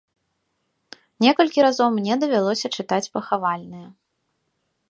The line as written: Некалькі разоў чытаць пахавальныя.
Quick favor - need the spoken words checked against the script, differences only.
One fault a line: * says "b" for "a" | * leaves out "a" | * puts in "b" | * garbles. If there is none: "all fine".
* puts in "мне давялося"